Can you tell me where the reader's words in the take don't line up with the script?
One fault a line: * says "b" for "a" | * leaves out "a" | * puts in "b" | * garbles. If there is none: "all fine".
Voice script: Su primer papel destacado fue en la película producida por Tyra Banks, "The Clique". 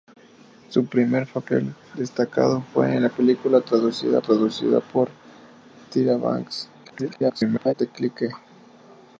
* puts in "producida"
* garbles